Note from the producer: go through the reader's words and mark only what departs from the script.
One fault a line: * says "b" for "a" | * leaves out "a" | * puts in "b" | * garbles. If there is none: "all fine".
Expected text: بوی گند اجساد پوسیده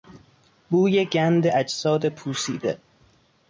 all fine